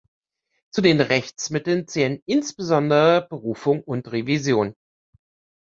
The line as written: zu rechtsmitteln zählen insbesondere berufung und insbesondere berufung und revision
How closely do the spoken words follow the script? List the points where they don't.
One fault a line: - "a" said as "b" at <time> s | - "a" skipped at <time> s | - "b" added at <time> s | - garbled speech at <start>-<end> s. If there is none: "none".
- "den" added at 0.8 s
- "insbesondere berufung und" skipped at 4.1 s